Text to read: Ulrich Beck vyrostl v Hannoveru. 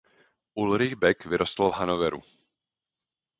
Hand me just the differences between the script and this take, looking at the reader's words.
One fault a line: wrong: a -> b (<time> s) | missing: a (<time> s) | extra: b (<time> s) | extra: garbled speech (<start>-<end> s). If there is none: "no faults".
no faults